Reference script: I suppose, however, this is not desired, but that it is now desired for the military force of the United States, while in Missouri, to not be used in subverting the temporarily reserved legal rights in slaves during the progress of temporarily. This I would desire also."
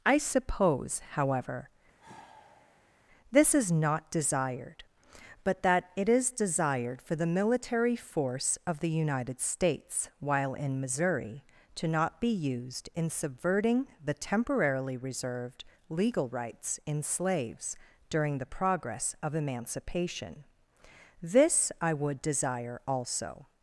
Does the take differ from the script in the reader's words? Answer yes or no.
yes